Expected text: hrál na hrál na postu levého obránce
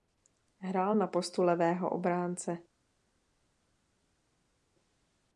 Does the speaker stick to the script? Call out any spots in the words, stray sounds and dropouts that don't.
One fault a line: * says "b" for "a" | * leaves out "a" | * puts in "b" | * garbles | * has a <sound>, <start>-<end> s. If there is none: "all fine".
* leaves out "hrál na"